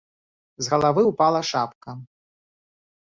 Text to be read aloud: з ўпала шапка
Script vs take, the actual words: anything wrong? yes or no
yes